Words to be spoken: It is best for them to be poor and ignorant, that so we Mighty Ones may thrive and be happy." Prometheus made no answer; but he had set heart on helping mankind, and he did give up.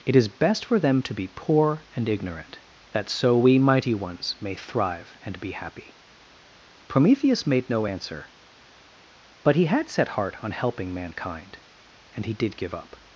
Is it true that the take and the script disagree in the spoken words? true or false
false